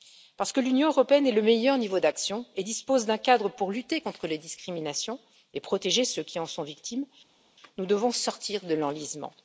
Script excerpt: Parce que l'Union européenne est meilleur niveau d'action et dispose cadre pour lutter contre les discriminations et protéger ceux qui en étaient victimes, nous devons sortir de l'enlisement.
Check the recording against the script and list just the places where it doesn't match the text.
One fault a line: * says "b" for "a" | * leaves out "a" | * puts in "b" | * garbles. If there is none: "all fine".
* puts in "le"
* puts in "d'un"
* says "sont" for "étaient"